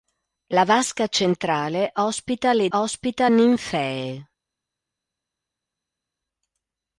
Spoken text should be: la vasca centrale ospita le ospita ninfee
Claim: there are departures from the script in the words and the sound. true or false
false